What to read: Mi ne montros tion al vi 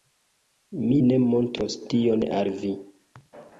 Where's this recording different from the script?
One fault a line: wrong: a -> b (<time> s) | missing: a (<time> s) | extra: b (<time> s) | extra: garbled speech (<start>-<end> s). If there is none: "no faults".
no faults